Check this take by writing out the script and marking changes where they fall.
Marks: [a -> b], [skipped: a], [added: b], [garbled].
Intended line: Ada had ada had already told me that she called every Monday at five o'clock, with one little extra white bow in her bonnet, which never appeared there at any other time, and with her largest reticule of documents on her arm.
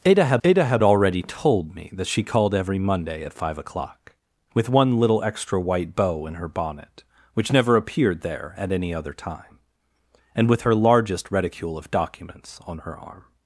Ada had ada had already told me that she called every Monday at five o'clock, with one little extra white bow in her bonnet, which never appeared there at any other time, and with her largest reticule of documents on her arm.